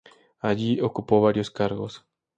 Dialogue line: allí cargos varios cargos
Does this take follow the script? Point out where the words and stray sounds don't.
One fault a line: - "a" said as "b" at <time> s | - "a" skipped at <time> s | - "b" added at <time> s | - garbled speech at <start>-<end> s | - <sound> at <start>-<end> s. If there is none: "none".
- "cargos" said as "ocupó" at 0.8 s